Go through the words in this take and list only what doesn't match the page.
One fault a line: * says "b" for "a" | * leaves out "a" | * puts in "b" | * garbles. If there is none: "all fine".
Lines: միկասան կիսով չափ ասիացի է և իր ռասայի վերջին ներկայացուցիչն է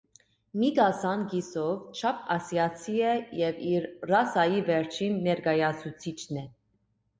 all fine